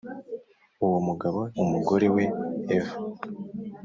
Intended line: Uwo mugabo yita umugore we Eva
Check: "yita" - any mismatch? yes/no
yes